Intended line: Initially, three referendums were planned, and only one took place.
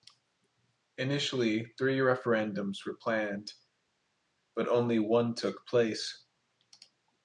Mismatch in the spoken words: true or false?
true